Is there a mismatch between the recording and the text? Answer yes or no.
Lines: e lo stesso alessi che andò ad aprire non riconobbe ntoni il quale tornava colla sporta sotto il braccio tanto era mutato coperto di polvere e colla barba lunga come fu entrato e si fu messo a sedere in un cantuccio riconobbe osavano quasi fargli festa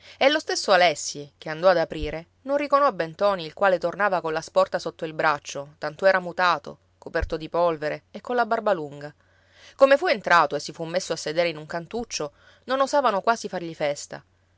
yes